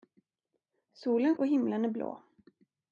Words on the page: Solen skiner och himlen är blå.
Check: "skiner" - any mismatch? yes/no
yes